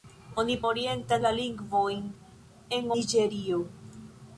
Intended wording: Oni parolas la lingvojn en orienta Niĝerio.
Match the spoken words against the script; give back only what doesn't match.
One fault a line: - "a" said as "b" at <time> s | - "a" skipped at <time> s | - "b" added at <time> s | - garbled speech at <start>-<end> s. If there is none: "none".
- "parolas" said as "orienta" at 0.7 s
- "orienta" skipped at 2.9 s